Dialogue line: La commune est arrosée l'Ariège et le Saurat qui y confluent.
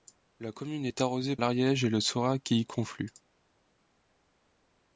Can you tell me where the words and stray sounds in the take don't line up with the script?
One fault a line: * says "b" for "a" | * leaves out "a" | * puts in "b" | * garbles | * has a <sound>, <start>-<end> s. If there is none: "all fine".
all fine